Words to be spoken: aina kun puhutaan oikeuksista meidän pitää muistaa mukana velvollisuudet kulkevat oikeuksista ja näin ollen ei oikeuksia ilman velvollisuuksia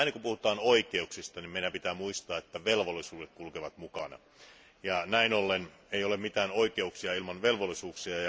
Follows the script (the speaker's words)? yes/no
no